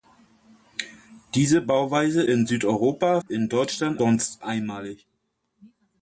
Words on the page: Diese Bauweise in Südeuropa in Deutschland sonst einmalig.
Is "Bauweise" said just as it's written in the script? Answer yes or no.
yes